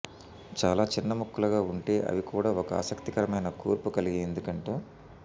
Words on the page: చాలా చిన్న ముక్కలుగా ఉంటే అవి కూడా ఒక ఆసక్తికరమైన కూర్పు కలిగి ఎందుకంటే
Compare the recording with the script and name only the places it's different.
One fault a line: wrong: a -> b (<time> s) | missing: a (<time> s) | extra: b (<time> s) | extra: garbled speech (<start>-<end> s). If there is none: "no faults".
no faults